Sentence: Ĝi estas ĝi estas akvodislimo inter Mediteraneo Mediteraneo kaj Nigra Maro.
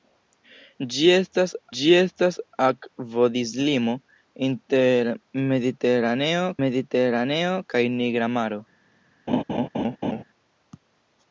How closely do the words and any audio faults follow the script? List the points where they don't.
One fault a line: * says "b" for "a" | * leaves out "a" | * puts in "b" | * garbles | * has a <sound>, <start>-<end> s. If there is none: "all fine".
* has a laugh, 9.3-10.2 s